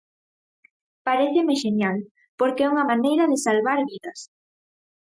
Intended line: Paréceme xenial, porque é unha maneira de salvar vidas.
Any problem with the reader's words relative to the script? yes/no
no